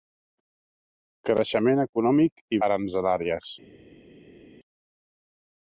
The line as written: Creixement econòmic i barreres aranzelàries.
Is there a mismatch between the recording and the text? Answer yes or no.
yes